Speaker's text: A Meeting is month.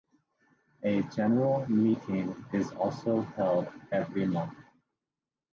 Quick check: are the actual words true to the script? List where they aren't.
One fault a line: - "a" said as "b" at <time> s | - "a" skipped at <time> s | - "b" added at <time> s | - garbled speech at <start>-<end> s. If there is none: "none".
- "General" added at 1.1 s
- "also held every" added at 2.7 s